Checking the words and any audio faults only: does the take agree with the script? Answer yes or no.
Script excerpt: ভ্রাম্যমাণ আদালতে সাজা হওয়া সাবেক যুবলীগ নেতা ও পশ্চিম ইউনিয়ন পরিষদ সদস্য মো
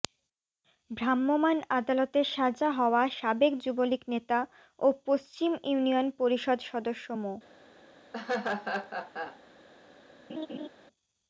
no